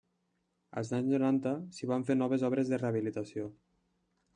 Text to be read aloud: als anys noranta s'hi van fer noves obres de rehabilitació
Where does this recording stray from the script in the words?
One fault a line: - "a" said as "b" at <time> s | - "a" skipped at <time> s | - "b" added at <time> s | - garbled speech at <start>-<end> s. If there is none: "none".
none